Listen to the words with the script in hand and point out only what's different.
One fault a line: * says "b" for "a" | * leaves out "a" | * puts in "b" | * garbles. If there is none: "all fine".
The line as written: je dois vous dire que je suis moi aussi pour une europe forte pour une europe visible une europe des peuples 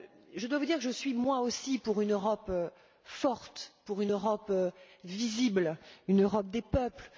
all fine